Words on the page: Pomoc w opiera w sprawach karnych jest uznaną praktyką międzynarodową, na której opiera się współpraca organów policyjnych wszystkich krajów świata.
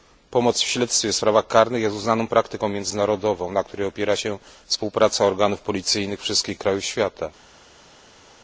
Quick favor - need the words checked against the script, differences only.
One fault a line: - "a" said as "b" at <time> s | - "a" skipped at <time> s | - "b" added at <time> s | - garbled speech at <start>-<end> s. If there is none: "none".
- "opiera" said as "śledztwie" at 0.7 s